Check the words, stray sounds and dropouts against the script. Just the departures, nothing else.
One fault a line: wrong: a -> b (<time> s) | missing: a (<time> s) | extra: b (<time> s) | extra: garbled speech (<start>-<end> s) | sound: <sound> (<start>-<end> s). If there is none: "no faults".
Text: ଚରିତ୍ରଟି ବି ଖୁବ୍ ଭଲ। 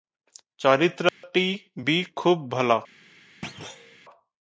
sound: dropout (1.1-1.2 s)
sound: thud (3.4-4.0 s)